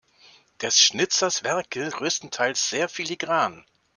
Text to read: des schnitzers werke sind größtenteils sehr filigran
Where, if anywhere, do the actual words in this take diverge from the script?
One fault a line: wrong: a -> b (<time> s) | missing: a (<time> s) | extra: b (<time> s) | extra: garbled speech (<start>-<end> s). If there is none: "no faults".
missing: sind (1.9 s)